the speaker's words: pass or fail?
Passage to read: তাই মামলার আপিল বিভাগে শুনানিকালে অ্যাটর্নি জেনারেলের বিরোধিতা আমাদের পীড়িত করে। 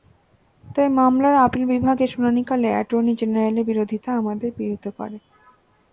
pass